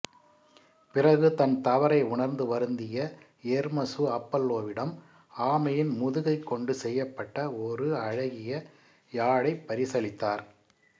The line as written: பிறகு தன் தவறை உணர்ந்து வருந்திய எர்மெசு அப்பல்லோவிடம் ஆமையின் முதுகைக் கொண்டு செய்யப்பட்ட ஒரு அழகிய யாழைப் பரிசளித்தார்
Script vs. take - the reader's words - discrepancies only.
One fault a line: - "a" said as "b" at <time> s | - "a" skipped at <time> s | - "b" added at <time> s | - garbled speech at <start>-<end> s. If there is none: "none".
none